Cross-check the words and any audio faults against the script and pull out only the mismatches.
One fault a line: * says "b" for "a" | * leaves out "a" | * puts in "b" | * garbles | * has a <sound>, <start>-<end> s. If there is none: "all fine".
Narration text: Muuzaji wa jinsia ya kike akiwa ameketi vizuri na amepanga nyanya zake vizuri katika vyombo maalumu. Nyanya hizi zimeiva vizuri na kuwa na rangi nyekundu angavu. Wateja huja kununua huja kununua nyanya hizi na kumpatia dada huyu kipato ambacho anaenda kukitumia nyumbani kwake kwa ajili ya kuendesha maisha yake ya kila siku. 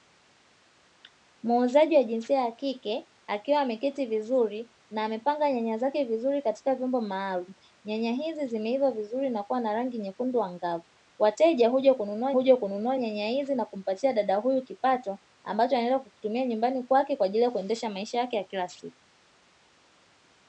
all fine